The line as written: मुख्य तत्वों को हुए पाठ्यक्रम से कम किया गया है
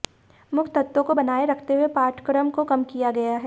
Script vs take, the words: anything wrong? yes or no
yes